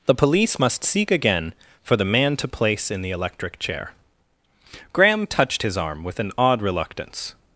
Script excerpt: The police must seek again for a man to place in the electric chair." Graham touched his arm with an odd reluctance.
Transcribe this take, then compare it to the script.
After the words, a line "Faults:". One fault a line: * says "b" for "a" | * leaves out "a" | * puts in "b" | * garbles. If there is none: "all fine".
The police must seek again for the man to place in the electric chair." Graham touched his arm with an odd reluctance.
Faults:
* says "the" for "a"